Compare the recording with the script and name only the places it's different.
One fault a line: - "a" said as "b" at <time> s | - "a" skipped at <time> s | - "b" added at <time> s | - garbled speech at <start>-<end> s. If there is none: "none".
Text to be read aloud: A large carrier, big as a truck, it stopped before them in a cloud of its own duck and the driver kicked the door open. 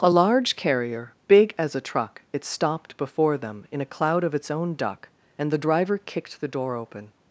none